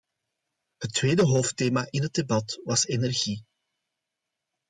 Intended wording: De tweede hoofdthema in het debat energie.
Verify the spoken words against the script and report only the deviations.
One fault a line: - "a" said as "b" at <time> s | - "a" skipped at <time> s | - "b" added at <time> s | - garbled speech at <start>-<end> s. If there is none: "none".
- "De" said as "Het" at 0.8 s
- "was" added at 2.6 s